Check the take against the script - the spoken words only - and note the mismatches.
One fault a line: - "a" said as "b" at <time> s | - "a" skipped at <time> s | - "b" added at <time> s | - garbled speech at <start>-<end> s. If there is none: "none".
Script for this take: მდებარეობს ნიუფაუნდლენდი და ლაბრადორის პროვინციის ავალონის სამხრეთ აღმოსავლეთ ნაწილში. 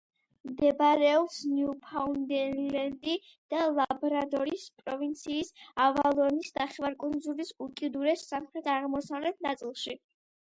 - "ნახევარკუნძულის უკიდურეს" added at 6.6 s